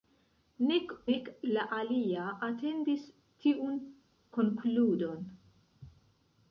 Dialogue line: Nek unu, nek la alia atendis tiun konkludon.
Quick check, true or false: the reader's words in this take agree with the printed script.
false